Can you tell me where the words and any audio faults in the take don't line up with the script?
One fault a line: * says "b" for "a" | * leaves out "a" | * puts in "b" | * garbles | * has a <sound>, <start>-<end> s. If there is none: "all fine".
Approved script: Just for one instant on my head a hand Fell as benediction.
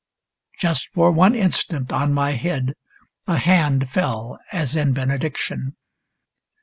* puts in "in"